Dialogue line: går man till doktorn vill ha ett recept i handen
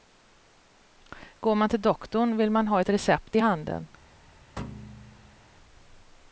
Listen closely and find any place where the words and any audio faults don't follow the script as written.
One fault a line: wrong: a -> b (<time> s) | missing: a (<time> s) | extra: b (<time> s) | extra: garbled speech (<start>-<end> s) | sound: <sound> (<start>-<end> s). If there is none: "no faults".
extra: man (2.5 s)
sound: thud (4.6-5.4 s)